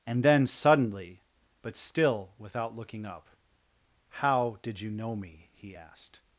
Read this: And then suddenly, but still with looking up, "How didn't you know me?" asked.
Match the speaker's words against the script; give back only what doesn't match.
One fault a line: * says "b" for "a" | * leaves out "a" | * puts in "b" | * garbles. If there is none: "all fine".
* says "without" for "with"
* says "did" for "didn't"
* puts in "he"